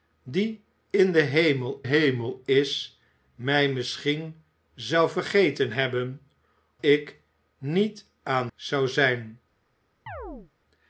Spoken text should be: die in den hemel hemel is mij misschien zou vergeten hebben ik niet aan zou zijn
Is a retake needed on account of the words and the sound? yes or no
yes